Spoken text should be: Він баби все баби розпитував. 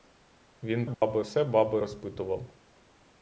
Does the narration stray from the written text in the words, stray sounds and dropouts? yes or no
yes